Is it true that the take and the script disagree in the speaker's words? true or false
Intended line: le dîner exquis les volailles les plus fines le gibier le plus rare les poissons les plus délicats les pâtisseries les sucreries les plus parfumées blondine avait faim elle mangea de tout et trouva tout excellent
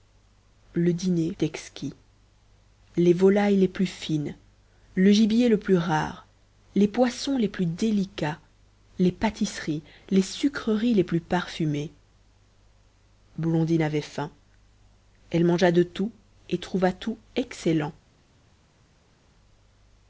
false